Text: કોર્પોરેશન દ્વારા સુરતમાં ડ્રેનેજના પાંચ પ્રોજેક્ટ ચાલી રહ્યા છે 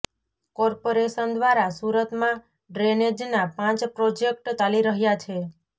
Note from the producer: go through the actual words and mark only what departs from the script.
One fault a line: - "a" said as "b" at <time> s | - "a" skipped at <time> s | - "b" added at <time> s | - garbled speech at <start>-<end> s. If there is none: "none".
none